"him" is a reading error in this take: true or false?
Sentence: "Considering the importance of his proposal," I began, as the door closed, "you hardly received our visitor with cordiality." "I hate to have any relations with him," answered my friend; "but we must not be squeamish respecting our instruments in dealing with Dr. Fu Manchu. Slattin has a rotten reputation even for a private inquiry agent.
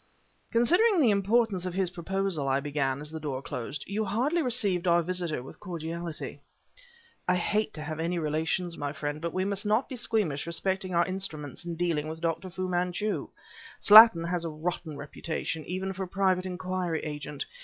true